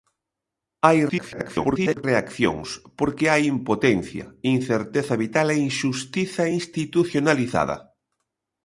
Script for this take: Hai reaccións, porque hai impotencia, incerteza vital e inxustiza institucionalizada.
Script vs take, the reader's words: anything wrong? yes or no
yes